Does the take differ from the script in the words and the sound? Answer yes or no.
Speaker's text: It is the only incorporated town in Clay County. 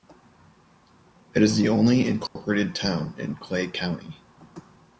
yes